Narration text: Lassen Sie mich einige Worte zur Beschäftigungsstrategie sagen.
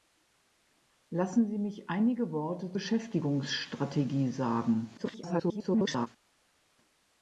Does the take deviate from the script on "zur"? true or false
true